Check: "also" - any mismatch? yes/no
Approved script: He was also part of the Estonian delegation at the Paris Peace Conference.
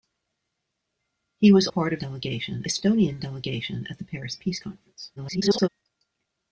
yes